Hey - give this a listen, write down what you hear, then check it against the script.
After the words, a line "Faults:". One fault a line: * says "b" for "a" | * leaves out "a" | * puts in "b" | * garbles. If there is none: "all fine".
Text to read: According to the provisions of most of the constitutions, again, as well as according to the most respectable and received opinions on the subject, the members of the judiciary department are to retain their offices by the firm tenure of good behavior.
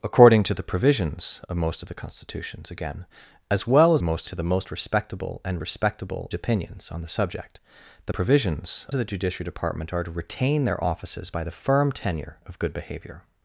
According to the provisions of most of the constitutions, again, as well as most to the most respectable and respectable opinions on the subject, the provisions of the judiciary department are to retain their offices by the firm tenure of good behavior.
Faults:
* says "most" for "according"
* says "respectable" for "received"
* says "provisions" for "members"